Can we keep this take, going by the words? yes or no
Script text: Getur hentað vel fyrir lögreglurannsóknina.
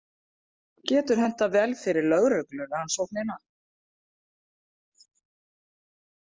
yes